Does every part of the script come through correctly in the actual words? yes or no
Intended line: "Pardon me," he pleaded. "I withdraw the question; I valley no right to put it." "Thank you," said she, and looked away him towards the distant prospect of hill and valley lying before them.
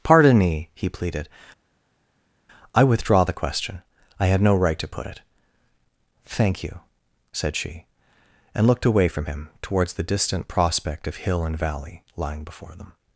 no